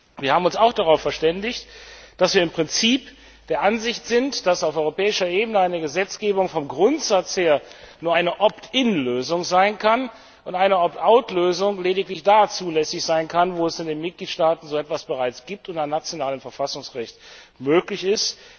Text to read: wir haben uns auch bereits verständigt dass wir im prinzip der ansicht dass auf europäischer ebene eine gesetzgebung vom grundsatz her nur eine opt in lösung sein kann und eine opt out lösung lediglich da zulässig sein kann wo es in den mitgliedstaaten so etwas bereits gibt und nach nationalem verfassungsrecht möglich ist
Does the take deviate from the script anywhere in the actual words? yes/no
yes